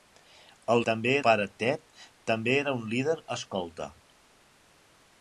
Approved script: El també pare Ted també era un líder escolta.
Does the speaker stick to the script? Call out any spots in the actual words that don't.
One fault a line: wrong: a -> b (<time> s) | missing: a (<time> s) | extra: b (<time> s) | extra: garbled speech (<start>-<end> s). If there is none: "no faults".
no faults